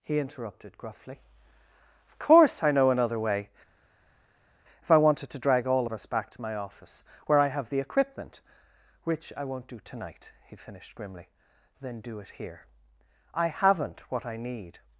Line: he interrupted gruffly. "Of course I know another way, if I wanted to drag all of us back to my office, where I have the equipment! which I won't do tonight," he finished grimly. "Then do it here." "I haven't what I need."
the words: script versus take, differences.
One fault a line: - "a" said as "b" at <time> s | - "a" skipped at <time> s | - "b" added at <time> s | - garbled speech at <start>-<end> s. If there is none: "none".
none